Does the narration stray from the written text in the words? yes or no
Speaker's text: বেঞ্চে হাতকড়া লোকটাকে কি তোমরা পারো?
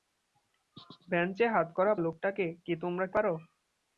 no